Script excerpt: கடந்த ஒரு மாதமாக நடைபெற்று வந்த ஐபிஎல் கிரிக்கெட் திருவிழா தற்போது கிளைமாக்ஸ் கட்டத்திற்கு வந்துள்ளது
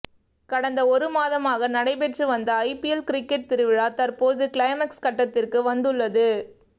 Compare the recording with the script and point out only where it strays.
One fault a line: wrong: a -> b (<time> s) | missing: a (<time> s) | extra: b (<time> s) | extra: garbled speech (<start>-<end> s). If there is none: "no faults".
no faults